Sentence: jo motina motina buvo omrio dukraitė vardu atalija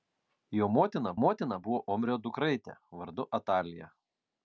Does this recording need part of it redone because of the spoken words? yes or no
no